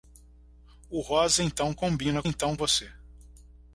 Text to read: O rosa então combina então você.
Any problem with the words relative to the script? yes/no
no